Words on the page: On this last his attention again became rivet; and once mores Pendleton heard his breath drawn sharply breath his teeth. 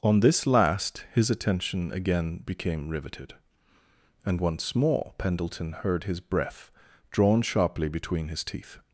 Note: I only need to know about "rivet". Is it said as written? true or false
false